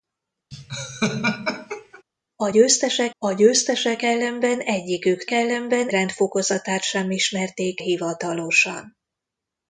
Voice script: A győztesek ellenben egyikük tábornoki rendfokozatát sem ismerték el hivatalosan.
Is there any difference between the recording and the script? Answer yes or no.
yes